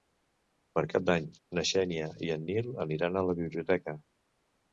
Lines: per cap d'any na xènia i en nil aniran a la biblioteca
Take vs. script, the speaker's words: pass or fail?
pass